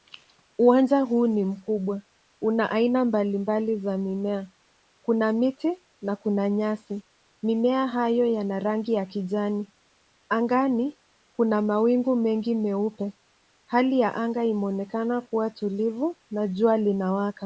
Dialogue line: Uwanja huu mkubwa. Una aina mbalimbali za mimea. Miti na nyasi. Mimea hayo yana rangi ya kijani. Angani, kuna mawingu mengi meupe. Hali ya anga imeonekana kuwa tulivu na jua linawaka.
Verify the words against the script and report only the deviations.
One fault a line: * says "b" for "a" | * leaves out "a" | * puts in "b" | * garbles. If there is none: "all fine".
* puts in "ni"
* puts in "Kuna"
* puts in "kuna"